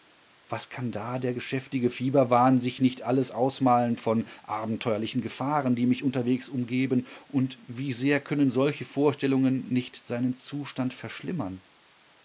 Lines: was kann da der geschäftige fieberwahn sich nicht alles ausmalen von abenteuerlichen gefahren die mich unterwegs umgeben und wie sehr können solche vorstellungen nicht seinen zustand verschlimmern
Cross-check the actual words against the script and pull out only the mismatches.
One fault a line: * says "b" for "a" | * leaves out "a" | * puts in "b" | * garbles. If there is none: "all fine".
all fine